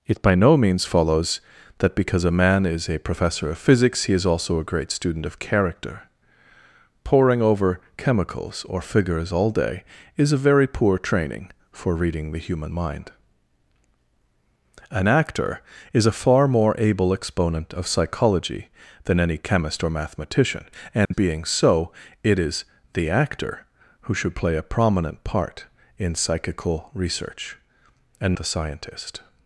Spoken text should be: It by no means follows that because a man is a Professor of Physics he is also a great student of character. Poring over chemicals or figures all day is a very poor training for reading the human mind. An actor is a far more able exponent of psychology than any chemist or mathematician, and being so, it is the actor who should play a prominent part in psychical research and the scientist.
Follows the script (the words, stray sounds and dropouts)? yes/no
no